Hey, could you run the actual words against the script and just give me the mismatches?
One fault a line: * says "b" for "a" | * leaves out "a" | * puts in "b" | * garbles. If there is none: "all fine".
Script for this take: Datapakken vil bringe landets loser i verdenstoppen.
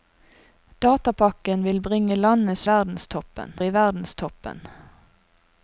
* says "verdenstoppen" for "loser"